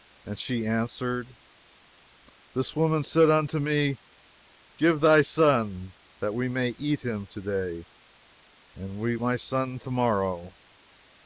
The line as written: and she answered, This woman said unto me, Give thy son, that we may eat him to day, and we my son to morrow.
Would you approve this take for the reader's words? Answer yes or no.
yes